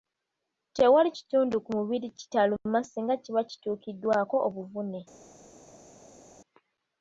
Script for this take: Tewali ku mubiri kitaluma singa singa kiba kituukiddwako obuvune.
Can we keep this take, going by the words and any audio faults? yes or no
no